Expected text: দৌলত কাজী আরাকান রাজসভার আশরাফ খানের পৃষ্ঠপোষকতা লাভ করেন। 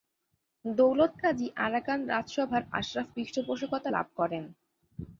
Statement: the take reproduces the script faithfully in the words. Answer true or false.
false